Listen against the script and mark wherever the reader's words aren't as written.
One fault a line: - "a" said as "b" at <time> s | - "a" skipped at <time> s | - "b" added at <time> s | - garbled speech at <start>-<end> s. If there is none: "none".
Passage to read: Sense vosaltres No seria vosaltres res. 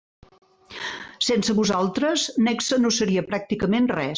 - "Nexe" added at 2.5 s
- "vosaltres" said as "pràcticament" at 3.3 s